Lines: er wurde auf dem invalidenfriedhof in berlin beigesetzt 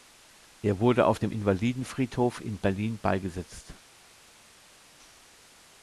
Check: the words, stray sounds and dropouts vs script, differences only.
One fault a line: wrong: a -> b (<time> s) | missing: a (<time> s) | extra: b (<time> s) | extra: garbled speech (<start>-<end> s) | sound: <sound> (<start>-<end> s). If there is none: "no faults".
no faults